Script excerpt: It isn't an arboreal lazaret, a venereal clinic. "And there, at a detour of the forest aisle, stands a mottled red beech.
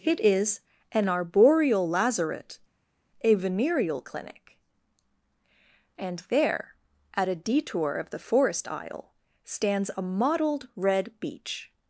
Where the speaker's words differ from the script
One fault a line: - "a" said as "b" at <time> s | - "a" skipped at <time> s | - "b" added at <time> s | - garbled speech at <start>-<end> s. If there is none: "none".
- "isn't" said as "is" at 0.2 s